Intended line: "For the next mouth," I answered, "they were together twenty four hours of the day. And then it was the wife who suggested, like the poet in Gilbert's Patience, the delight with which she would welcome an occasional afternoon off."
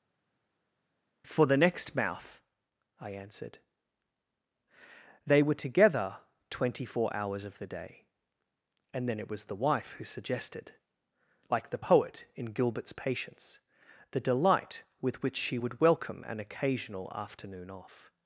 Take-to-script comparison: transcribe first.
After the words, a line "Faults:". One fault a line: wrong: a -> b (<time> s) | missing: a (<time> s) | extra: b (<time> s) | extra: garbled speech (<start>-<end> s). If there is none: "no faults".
"For the next mouth," I answered, "they were together twenty four hours of the day. And then it was the wife who suggested, like the poet in Gilbert's Patience, the delight with which she would welcome an occasional afternoon off."
Faults:
no faults